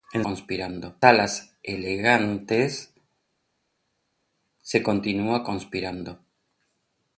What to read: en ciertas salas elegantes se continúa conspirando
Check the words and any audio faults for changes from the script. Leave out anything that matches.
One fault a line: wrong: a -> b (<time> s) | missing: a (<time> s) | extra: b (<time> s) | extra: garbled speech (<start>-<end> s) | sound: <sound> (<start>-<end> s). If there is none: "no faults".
wrong: ciertas -> conspirando (0.2 s)